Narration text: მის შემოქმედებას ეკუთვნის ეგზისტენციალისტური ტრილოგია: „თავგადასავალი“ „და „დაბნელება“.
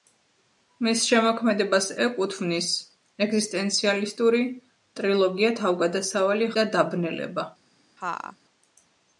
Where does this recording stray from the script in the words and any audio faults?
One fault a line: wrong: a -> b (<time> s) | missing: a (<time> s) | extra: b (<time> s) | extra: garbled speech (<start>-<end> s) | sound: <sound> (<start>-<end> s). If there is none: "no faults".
sound: laugh (8.0-8.4 s)